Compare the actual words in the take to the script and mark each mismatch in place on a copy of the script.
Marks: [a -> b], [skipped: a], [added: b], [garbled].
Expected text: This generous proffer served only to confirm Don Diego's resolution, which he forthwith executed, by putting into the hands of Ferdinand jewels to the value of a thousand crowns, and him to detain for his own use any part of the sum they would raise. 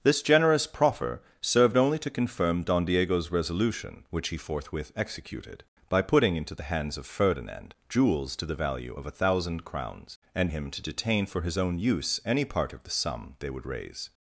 This generous proffer served only to confirm Don Diego's resolution, which he forthwith executed, by putting into the hands of Ferdinand jewels to the value of a thousand crowns, and him to detain for his own use any part of the sum they would raise.